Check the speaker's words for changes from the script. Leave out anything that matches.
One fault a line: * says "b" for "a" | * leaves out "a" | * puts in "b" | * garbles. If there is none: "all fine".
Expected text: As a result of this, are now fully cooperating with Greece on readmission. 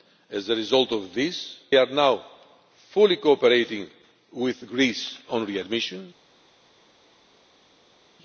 all fine